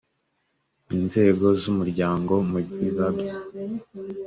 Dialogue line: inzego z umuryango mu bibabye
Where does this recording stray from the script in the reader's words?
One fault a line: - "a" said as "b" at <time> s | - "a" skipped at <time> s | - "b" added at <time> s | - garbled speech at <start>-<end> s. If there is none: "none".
none